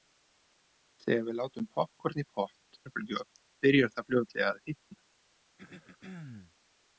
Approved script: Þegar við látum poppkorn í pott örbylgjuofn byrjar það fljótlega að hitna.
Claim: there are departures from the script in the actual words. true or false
false